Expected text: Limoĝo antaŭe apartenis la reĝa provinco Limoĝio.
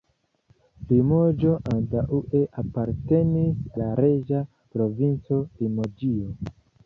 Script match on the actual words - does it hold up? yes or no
yes